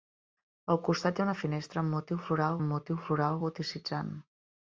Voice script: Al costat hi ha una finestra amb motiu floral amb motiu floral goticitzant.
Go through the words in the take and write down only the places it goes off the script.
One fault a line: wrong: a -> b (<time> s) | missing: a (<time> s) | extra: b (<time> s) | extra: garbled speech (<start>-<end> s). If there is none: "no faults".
no faults